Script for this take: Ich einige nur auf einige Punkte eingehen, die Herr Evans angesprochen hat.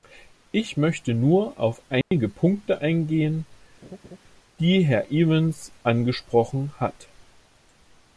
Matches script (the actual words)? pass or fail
fail